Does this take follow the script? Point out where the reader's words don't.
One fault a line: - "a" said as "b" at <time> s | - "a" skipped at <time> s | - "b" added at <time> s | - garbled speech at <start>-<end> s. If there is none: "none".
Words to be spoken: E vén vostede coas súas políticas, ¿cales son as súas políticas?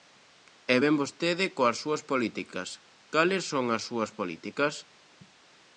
none